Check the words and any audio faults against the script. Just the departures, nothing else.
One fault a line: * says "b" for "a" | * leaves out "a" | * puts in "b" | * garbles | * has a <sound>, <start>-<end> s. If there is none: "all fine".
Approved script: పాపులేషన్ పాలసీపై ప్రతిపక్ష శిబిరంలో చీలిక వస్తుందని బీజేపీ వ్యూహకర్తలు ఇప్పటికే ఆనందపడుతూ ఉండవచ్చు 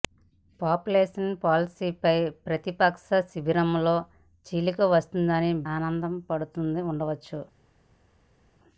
* leaves out "బీజేపీ వ్యూహకర్తలు ఇప్పటికే"